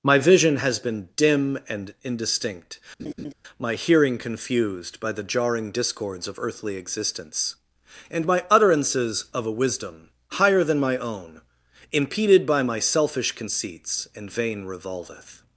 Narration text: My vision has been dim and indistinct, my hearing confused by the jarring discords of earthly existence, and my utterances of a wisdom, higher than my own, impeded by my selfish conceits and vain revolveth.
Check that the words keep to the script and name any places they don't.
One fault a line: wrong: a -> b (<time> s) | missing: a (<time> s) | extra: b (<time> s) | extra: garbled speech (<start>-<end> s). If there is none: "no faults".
no faults